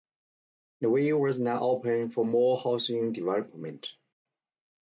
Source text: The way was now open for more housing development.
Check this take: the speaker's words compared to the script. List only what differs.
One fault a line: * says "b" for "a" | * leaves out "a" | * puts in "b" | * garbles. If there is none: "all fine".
all fine